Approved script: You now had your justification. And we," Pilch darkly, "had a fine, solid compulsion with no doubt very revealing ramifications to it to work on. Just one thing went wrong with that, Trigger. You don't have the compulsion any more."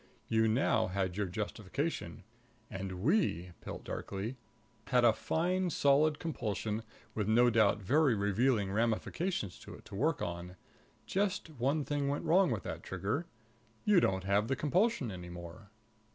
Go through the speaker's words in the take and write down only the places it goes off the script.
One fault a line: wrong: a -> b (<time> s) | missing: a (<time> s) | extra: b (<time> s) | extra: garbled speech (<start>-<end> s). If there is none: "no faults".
no faults